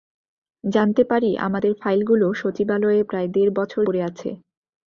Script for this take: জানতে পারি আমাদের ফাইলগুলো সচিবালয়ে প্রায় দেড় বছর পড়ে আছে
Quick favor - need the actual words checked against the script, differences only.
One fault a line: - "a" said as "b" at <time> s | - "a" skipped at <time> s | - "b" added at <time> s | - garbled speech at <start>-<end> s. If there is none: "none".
none